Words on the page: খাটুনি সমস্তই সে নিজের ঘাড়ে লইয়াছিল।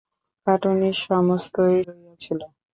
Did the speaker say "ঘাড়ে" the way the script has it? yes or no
no